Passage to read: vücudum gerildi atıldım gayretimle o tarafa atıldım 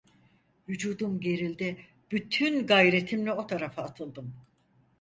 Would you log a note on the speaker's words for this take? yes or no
yes